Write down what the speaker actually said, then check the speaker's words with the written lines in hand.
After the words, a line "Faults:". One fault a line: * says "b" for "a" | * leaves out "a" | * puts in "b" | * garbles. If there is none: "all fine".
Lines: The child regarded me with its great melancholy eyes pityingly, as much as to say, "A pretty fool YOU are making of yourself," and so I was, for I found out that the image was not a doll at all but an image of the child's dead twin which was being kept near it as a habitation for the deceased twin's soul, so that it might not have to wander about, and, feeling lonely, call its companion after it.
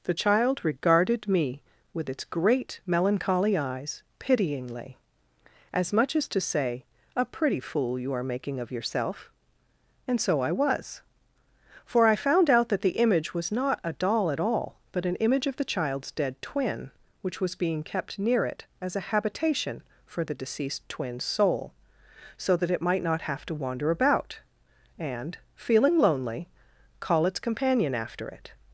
The child regarded me with its great melancholy eyes pityingly, as much as to say, "A pretty fool YOU are making of yourself," and so I was, for I found out that the image was not a doll at all but an image of the child's dead twin which was being kept near it as a habitation for the deceased twin's soul, so that it might not have to wander about, and, feeling lonely, call its companion after it.
Faults:
all fine